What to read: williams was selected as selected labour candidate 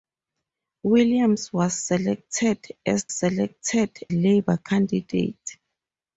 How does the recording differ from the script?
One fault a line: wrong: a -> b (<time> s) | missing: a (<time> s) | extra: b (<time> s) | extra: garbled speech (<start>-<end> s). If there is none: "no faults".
no faults